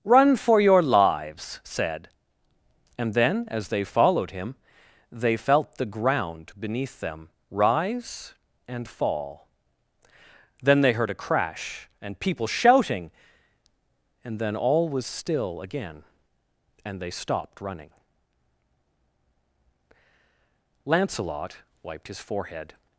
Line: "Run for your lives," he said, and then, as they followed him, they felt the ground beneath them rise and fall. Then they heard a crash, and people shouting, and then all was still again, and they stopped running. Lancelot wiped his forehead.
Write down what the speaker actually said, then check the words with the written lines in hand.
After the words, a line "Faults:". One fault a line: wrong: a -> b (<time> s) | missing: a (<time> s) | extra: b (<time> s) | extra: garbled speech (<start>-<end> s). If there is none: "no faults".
"Run for your lives," said, and then, as they followed him, they felt the ground beneath them rise and fall. Then they heard a crash, and people shouting, and then all was still again, and they stopped running. Lancelot wiped his forehead.
Faults:
missing: he (1.6 s)